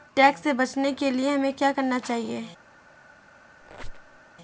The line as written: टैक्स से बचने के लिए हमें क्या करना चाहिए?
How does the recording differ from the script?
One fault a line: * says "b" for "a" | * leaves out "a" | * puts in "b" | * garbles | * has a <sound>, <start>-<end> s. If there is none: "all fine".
* has a squeak, 3.6-4.2 s